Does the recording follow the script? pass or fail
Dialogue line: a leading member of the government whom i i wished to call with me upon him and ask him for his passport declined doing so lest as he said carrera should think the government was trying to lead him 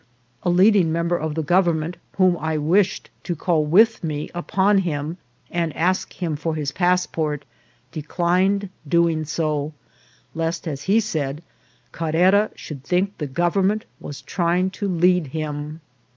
fail